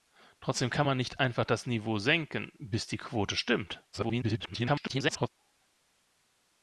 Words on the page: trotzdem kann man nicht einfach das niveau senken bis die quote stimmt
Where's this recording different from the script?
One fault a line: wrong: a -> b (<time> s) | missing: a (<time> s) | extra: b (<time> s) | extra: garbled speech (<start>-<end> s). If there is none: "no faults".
extra: garbled speech (3.9-5.3 s)